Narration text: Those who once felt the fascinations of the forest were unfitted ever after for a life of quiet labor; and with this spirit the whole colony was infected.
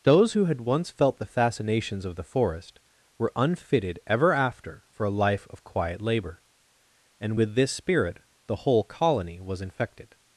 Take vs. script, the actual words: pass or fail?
fail